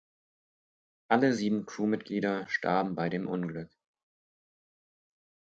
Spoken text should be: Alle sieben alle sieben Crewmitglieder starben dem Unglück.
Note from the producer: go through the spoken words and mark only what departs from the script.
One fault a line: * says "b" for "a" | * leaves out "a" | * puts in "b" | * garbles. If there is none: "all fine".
* leaves out "alle sieben"
* puts in "bei"